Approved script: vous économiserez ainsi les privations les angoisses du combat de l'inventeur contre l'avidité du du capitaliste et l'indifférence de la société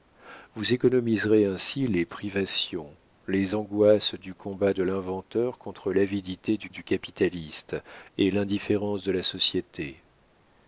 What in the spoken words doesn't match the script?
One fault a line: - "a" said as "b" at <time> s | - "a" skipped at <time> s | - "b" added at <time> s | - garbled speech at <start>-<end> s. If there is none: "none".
none